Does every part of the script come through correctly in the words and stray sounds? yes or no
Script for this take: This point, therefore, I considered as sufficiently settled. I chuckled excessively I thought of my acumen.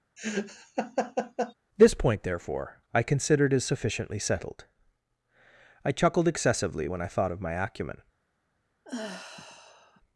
no